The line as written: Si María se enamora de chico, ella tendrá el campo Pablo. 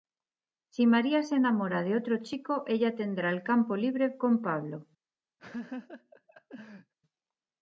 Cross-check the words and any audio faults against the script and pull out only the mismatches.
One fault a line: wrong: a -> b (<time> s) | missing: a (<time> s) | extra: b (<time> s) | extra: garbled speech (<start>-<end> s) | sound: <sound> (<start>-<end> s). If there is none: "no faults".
extra: otro (1.9 s)
extra: libre con (3.8 s)
sound: laugh (5.4-6.9 s)